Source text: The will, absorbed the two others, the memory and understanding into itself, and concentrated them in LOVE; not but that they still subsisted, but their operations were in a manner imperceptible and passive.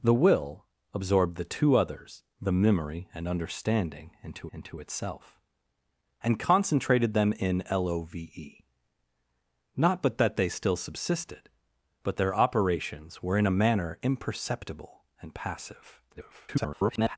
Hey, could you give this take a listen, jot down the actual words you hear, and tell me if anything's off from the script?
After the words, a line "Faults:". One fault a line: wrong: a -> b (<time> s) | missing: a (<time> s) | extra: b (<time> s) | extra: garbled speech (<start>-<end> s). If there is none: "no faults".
The will, absorbed the two others, the memory and understanding into into itself, and concentrated them in LOVE; not but that they still subsisted, but their operations were in a manner imperceptible and passive. [garbled]
Faults:
extra: into (4.5 s)
extra: garbled speech (16.1-17.2 s)